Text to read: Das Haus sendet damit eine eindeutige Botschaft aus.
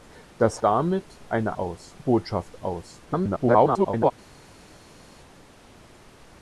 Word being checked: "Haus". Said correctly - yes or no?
no